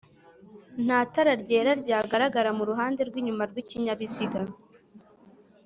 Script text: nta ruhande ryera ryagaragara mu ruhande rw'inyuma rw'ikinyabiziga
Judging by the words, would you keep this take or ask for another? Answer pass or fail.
fail